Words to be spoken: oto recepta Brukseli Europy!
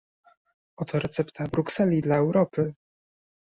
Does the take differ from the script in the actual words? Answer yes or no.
yes